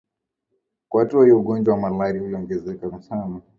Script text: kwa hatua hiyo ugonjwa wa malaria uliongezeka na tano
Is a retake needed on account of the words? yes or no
no